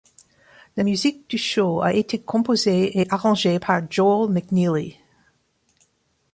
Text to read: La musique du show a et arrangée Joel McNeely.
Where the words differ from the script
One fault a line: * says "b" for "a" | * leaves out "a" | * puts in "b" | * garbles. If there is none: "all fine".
* puts in "été composée"
* puts in "par"